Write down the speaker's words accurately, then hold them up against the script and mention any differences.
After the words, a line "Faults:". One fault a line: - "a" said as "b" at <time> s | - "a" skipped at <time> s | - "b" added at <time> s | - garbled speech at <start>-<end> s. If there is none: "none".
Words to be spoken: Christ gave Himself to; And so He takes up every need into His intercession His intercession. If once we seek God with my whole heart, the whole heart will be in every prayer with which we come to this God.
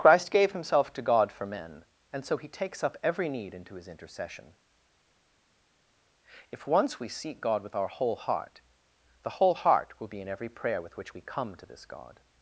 Christ gave Himself to God for men; and so He takes up every need into His intercession. If once we seek God with our whole heart, the whole heart will be in every prayer with which we come to this God.
Faults:
- "God for men" added at 1.0 s
- "His intercession" skipped at 4.5 s
- "my" said as "our" at 7.7 s